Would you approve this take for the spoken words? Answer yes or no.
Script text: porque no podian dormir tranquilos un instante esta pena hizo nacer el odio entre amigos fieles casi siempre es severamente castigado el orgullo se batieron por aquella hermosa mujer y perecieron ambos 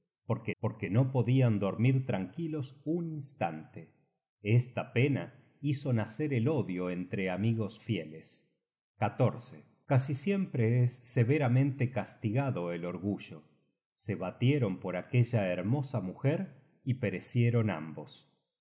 no